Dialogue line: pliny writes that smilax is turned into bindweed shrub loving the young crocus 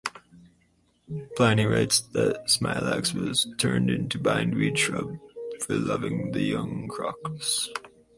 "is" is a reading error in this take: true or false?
true